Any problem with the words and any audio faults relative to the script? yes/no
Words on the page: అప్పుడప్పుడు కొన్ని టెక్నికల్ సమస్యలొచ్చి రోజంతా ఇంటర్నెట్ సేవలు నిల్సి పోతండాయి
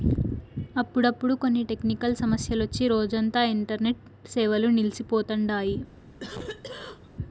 yes